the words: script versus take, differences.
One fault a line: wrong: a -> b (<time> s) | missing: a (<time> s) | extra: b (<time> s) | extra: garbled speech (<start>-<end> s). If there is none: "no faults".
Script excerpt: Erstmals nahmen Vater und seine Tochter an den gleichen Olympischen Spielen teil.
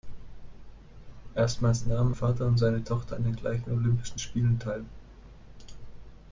no faults